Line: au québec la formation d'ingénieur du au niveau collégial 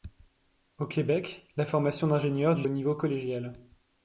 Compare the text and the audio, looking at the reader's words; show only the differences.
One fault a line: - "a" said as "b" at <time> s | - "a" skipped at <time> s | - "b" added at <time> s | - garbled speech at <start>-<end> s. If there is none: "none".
none